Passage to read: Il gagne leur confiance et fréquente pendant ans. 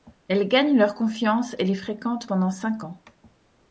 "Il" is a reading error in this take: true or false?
true